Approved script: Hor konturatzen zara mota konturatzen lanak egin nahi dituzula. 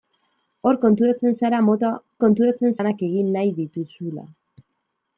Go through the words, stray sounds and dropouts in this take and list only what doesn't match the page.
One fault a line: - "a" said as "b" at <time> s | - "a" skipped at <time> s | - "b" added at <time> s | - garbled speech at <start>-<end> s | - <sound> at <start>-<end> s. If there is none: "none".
none